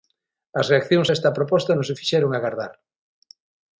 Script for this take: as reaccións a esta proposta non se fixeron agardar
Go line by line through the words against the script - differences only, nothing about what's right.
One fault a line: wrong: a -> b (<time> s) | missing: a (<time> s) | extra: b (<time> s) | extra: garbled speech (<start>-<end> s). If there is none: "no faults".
no faults